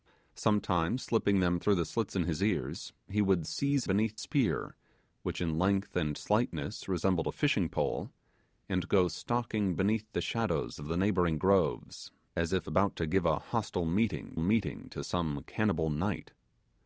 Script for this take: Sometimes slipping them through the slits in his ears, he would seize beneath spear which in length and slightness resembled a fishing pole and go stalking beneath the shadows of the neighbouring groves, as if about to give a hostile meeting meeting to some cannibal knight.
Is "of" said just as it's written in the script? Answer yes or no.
yes